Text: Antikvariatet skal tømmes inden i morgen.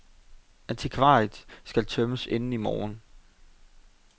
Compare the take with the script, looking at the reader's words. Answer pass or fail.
pass